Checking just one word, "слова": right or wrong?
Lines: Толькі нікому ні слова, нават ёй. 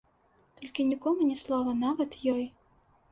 right